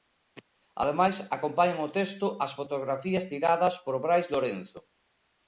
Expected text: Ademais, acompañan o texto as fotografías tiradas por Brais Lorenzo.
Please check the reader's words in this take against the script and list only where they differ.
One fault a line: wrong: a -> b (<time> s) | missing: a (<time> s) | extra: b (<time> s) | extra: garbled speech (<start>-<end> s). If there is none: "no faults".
no faults